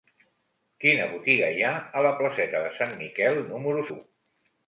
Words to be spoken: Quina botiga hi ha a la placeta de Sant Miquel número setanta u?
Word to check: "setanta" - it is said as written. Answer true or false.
false